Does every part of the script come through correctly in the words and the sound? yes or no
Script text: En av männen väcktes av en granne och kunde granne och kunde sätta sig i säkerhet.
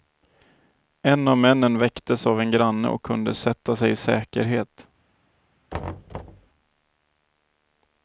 no